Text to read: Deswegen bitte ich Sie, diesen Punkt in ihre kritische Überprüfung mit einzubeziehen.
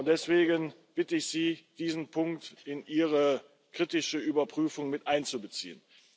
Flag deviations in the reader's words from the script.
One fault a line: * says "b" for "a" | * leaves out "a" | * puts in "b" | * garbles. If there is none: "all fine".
all fine